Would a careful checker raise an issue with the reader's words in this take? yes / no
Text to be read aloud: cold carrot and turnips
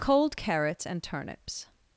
yes